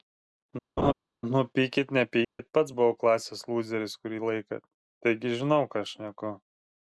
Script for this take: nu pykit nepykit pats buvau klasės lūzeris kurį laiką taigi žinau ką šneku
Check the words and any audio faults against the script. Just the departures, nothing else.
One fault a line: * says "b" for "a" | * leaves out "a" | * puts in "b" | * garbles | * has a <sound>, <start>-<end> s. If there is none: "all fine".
* has a laugh, 0.8-0.9 s
* has a dropout, 2.2-2.4 s